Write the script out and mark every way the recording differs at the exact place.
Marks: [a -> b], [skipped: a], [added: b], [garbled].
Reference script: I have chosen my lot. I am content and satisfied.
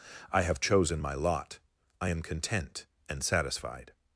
I have chosen my lot. I am content and satisfied.